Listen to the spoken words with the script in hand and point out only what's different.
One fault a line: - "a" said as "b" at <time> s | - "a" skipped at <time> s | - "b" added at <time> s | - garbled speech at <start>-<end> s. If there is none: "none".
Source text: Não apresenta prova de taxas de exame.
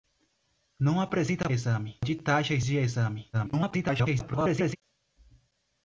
- "prova" said as "exame" at 1.5 s
- garbled speech at 3.3-4.8 s